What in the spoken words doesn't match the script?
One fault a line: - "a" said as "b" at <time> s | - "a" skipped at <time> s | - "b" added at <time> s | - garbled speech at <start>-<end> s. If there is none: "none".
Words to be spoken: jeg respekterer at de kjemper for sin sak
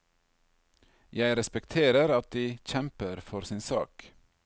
none